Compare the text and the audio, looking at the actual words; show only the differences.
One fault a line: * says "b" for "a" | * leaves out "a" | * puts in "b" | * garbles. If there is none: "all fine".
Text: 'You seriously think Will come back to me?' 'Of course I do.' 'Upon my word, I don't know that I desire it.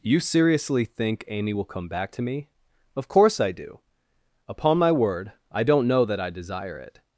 * puts in "Amy"